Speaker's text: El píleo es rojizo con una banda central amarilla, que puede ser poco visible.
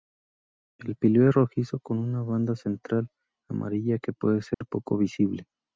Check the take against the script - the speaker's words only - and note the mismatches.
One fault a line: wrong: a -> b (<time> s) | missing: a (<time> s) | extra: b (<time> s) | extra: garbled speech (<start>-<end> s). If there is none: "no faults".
no faults